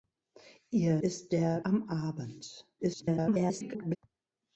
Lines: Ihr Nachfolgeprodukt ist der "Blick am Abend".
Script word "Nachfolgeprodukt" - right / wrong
wrong